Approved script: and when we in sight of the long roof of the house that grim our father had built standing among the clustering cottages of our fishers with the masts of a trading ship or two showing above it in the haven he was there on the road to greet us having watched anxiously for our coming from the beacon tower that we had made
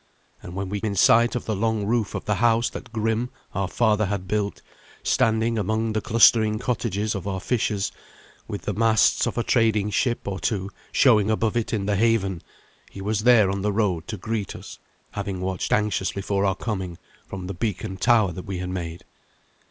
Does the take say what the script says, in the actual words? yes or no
yes